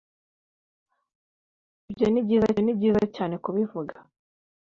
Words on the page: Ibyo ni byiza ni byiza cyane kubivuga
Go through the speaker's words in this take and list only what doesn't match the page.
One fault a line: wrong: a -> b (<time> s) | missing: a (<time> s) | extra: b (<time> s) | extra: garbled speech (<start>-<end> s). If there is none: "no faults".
no faults